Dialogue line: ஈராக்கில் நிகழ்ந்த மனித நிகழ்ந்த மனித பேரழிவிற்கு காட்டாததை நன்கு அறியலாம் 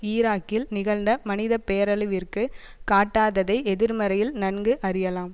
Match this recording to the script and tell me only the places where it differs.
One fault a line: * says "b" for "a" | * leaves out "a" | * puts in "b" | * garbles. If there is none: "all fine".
* leaves out "நிகழ்ந்த மனித"
* puts in "எதிர்மறையில்"